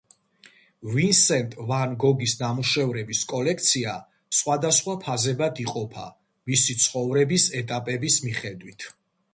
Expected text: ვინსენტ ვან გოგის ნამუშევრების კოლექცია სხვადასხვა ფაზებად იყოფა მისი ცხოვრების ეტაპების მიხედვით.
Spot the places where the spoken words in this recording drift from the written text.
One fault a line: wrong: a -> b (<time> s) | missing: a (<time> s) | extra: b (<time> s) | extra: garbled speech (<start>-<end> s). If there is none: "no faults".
no faults